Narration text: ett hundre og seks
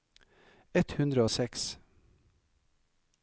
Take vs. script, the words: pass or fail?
pass